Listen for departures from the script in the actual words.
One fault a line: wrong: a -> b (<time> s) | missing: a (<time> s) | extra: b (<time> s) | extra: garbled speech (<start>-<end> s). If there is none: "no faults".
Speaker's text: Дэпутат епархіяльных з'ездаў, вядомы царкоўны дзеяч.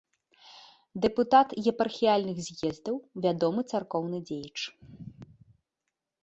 no faults